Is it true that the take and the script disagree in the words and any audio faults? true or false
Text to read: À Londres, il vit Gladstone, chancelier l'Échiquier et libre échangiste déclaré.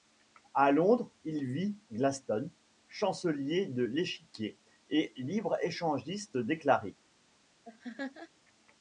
true